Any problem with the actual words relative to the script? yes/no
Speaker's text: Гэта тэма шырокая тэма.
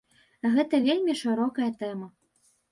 yes